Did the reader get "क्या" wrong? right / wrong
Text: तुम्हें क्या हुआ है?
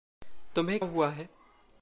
wrong